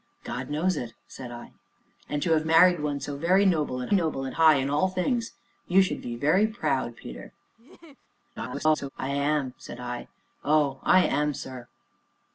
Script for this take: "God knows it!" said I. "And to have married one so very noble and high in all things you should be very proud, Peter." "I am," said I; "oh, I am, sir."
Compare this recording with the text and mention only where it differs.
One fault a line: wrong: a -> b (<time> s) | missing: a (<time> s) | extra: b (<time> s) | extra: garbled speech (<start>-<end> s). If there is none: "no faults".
extra: noble and (3.9 s)
extra: garbled speech (8.4-8.9 s)